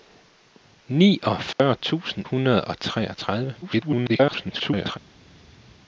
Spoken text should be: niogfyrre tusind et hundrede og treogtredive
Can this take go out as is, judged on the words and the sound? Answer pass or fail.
fail